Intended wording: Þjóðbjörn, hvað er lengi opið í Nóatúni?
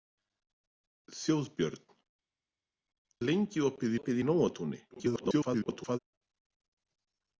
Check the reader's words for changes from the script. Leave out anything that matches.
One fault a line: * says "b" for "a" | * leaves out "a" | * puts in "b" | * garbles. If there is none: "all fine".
* leaves out "hvað"
* puts in "opið"
* garbles